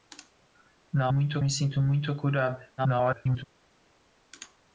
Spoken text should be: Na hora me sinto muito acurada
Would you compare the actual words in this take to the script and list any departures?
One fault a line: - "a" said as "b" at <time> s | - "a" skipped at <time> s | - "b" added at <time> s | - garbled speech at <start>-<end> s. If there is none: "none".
- "hora" said as "muito" at 1.1 s
- garbled speech at 2.8-3.4 s